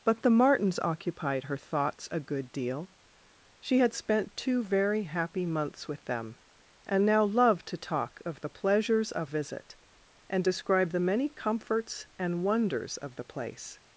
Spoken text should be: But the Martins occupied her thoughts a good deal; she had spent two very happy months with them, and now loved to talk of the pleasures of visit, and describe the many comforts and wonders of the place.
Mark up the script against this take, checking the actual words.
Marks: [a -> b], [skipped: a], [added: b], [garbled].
But the Martins occupied her thoughts a good deal; she had spent two very happy months with them, and now loved to talk of the pleasures of visit, and describe the many comforts and wonders of the place.